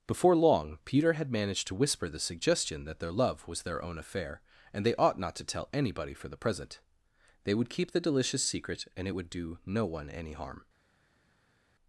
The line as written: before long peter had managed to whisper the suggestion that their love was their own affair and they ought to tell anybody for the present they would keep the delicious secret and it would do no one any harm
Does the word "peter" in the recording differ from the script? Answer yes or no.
no